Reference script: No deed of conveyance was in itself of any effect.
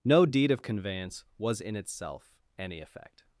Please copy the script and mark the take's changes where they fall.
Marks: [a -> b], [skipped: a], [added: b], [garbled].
No deed of conveyance was in itself [skipped: of] any effect.